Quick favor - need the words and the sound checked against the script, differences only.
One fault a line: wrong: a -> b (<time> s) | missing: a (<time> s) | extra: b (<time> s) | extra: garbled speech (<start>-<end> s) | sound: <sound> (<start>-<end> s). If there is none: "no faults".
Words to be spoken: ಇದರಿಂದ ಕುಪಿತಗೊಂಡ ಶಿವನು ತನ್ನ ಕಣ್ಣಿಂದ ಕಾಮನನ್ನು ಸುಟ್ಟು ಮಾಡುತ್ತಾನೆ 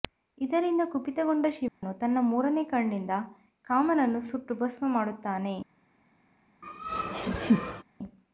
sound: dropout (1.7-1.8 s)
extra: ಮೂರನೇ (2.2 s)
extra: ಭಸ್ಮ (4.5 s)
sound: laugh (6.6-7.8 s)